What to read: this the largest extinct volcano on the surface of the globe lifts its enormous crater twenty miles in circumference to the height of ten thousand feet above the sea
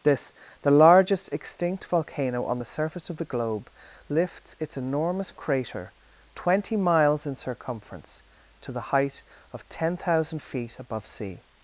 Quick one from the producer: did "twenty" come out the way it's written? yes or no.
yes